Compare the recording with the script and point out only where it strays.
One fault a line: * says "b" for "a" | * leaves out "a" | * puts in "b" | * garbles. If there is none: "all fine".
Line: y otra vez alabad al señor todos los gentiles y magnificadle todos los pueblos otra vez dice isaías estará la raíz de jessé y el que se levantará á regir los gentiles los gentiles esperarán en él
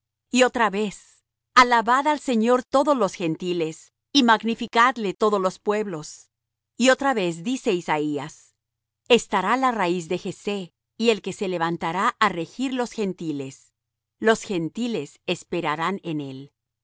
* puts in "y"